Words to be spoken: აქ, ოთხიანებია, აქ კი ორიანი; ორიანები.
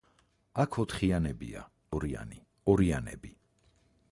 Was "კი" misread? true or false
true